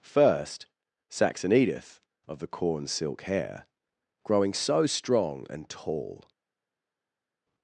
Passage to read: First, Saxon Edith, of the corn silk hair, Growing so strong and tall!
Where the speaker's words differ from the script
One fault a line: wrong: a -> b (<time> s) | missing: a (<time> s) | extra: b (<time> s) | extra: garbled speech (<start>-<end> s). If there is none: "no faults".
no faults